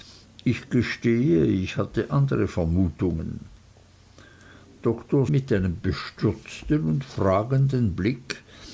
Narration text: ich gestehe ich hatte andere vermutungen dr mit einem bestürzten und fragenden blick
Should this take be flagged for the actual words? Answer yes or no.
no